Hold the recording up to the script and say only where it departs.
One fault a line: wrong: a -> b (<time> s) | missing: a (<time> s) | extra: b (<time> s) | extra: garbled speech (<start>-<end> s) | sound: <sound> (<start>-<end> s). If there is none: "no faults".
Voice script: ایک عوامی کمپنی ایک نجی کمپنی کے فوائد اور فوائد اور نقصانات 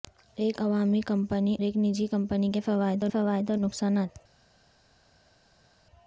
no faults